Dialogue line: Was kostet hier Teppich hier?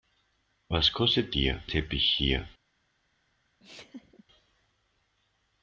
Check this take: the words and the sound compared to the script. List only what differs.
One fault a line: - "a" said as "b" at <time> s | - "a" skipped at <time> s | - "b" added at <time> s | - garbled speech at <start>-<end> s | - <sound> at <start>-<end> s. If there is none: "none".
- laugh at 3.6-4.2 s